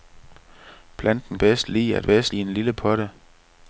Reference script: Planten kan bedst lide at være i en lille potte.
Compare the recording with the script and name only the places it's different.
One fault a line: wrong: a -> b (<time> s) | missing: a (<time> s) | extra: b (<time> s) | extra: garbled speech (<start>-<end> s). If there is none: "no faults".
missing: kan (1.4 s)
wrong: være -> bedst (2.0 s)